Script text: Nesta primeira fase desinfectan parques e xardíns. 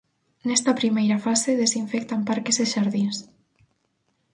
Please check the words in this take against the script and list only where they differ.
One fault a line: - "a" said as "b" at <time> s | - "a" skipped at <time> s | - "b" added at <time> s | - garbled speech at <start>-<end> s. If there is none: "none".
none